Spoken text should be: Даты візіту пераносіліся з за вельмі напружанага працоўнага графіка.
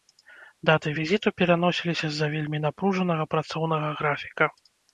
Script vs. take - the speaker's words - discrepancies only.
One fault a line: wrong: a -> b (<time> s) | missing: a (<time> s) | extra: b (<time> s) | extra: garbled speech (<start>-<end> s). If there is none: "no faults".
no faults